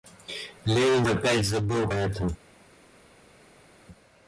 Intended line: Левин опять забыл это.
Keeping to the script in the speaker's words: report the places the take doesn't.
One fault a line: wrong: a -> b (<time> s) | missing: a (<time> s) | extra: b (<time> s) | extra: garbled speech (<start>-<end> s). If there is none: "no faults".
no faults